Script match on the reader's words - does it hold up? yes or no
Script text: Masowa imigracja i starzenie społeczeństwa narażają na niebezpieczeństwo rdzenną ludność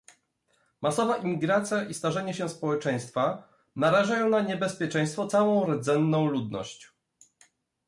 no